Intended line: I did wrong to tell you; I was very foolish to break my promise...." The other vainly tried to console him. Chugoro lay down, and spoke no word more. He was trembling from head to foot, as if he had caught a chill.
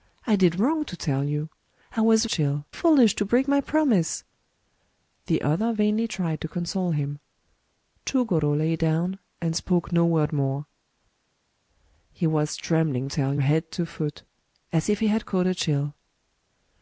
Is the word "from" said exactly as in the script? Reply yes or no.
no